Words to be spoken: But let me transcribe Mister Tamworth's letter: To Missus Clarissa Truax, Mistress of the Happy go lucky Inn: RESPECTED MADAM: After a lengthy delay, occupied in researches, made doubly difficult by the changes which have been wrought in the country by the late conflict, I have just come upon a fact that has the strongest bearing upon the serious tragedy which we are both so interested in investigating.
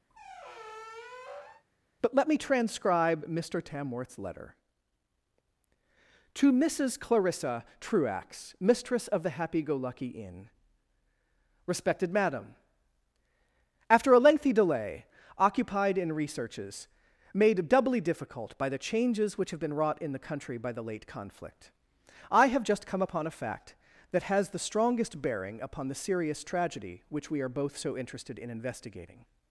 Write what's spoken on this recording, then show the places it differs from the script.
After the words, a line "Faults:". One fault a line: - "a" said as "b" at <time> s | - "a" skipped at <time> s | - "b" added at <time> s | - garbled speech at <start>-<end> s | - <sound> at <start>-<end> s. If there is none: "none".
But let me transcribe Mister Tamworth's letter: To Missus Clarissa Truax, Mistress of the Happy go lucky Inn: RESPECTED MADAM: After a lengthy delay, occupied in researches, made doubly difficult by the changes which have been wrought in the country by the late conflict, I have just come upon a fact that has the strongest bearing upon the serious tragedy which we are both so interested in investigating.
Faults:
- squeak at 0.1-1.6 s